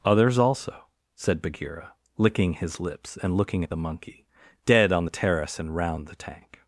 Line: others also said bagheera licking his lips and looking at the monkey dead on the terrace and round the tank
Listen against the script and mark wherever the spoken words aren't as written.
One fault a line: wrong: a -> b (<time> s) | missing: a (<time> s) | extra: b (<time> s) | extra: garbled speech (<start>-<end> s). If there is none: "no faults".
no faults